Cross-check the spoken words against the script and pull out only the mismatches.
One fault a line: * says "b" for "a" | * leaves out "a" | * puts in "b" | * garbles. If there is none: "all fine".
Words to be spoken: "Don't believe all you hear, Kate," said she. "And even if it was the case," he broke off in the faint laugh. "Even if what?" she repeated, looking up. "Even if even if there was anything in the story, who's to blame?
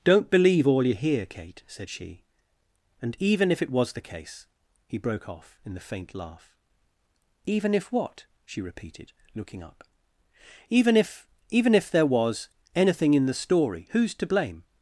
all fine